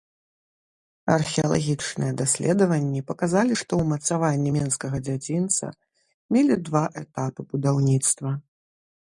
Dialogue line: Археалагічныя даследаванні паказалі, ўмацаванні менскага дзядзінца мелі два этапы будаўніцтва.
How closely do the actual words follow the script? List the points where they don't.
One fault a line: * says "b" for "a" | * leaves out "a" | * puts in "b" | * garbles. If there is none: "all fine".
* puts in "што"